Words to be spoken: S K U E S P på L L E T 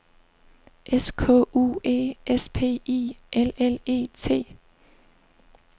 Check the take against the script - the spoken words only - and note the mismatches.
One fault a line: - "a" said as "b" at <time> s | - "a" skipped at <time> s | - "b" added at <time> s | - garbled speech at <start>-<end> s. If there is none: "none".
- "på" said as "I" at 2.9 s